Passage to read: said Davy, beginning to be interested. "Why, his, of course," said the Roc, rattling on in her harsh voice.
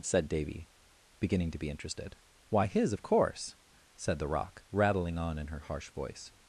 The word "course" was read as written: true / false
true